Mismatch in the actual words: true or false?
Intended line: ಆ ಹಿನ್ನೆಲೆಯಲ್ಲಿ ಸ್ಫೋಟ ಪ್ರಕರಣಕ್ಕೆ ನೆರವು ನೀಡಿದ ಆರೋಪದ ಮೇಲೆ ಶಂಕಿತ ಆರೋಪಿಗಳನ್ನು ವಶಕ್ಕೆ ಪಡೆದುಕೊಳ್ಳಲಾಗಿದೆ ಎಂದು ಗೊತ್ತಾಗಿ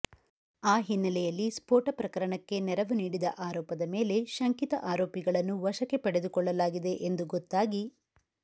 false